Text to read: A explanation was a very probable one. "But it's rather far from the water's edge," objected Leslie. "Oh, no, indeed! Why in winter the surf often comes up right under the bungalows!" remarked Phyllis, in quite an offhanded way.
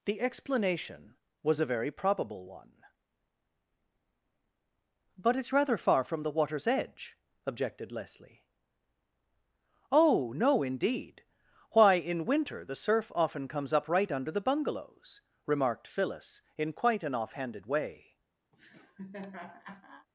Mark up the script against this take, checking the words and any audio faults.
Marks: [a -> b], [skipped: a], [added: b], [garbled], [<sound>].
[A -> The] explanation was a very probable one. "But it's rather far from the water's edge," objected Leslie. "Oh, no, indeed! Why in winter the surf often comes up right under the bungalows!" remarked Phyllis, in quite an offhanded way. [laugh]